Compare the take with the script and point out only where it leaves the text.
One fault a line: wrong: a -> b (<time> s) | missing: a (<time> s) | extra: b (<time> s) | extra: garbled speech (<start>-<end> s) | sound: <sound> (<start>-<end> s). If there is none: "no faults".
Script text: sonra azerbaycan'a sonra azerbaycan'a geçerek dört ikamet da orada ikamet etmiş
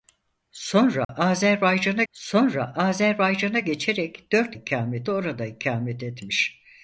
sound: dropout (1.0-1.1 s)